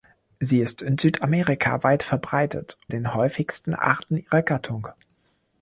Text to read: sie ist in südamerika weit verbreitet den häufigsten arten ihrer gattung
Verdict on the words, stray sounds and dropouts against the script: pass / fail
pass